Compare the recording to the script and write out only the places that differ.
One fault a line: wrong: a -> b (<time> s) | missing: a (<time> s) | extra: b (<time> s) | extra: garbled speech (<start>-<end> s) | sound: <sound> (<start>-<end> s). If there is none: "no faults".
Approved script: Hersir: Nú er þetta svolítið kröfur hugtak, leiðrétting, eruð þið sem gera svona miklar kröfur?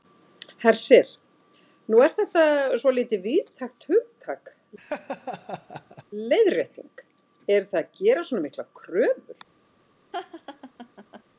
wrong: kröfur -> víðtækt (3.3 s)
sound: laugh (4.8-6.0 s)
wrong: sem -> að (7.8 s)
sound: laugh (10.1-11.2 s)